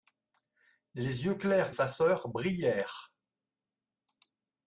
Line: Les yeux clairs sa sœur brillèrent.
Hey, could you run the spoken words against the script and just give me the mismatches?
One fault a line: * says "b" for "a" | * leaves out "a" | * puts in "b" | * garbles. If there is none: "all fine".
all fine